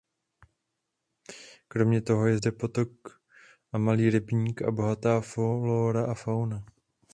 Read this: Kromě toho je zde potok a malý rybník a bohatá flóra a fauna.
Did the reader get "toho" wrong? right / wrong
right